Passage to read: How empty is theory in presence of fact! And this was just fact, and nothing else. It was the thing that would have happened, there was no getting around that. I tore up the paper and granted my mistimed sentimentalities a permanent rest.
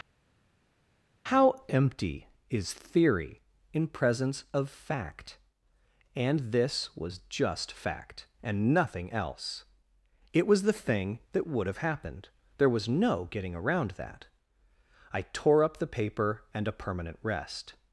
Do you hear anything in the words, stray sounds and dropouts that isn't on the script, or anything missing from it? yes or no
yes